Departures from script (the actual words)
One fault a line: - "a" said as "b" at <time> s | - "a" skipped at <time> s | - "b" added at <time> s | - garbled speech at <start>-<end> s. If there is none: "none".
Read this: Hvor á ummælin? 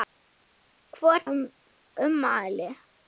none